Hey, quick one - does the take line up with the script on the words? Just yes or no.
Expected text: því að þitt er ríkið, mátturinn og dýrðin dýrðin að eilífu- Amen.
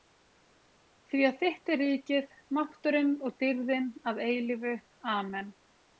no